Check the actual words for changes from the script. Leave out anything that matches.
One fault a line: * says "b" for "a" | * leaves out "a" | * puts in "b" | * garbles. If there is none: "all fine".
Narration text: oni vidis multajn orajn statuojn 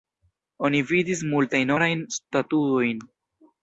all fine